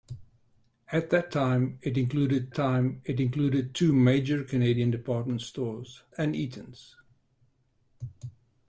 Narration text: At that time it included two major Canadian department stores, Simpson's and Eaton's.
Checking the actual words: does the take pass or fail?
fail